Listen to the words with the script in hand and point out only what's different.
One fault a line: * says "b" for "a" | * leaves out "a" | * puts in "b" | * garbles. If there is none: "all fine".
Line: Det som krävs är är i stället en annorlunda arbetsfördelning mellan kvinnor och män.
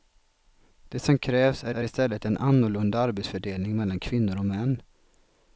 all fine